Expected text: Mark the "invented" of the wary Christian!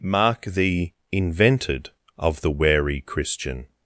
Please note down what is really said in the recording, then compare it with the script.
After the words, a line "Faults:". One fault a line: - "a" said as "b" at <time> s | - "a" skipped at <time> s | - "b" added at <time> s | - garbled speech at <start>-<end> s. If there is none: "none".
Mark the "invented" of the wary Christian!
Faults:
none